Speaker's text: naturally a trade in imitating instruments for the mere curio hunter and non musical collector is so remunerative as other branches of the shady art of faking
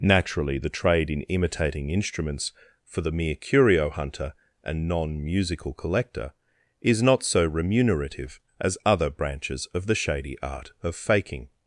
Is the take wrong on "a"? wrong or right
wrong